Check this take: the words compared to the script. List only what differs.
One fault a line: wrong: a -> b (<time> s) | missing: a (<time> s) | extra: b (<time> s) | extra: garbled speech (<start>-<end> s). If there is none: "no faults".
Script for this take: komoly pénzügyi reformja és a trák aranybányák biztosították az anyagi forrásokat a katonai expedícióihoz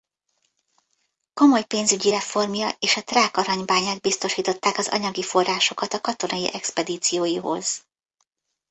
no faults